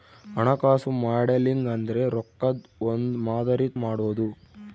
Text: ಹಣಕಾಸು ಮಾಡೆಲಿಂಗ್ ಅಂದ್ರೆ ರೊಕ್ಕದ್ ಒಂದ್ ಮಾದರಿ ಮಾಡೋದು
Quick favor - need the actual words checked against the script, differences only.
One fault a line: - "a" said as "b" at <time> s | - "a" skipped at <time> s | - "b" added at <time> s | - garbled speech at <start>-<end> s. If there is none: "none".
none